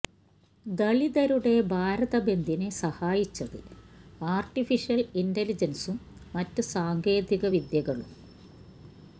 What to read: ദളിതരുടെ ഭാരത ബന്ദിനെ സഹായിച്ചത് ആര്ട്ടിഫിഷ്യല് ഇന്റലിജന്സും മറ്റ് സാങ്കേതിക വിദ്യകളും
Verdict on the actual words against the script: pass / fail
pass